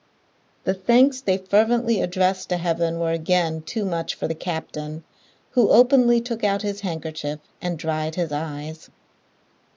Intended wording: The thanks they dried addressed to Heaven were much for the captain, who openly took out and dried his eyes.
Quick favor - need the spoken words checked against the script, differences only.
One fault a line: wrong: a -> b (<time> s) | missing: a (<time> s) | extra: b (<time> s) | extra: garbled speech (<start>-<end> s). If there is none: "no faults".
wrong: dried -> fervently (1.4 s)
extra: again too (3.1 s)
extra: his handkerchief (6.6 s)